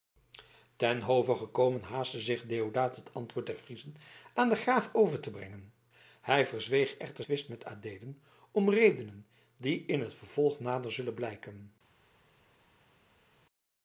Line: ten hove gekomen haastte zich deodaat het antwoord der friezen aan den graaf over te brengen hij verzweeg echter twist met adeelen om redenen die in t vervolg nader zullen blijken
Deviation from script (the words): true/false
false